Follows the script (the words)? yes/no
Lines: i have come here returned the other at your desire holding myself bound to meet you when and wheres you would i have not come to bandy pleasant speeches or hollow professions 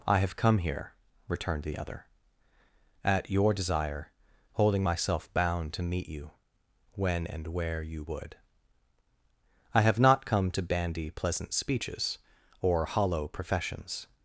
no